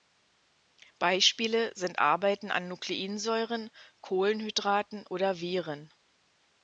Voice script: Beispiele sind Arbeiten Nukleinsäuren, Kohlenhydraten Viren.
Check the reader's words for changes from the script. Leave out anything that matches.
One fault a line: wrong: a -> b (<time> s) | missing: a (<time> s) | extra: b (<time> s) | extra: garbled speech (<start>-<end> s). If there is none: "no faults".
extra: an (2.5 s)
extra: oder (5.1 s)